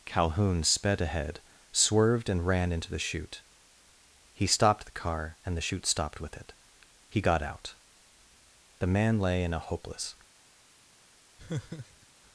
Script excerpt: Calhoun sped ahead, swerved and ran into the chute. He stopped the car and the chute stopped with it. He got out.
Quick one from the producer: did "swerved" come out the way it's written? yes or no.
yes